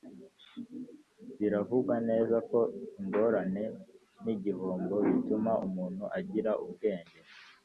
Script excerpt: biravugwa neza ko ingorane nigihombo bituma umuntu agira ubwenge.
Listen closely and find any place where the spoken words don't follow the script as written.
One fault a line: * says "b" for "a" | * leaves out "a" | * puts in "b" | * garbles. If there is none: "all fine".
all fine